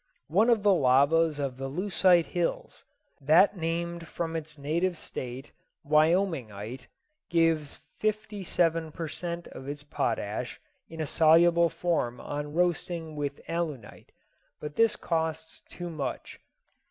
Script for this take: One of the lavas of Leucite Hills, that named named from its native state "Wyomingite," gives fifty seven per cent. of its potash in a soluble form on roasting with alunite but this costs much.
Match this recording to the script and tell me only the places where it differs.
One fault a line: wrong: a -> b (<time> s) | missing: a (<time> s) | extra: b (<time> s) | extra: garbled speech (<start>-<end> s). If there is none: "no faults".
extra: the (1.6 s)
missing: named (4.1 s)
extra: too (15.7 s)